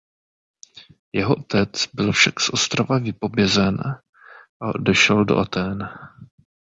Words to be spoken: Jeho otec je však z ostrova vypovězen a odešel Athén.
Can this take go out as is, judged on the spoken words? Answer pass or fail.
fail